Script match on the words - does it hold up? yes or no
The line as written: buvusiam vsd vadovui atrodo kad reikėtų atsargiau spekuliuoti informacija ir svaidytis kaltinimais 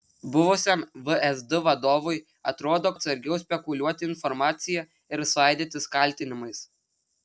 no